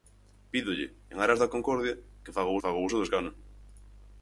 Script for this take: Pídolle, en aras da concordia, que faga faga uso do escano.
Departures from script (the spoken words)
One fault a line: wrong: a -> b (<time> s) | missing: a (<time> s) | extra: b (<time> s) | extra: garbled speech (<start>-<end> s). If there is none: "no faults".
no faults